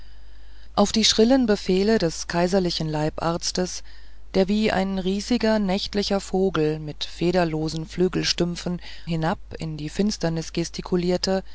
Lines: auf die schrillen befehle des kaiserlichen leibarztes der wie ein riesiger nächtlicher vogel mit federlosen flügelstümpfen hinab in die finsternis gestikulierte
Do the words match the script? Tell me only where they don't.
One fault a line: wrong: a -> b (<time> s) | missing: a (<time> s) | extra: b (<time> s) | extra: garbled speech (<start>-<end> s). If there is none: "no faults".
no faults